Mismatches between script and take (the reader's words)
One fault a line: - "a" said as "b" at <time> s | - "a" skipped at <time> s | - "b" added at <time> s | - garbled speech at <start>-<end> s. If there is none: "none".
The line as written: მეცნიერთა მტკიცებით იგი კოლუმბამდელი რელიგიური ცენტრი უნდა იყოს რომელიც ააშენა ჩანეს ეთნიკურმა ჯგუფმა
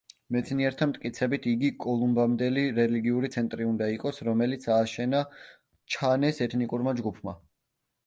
none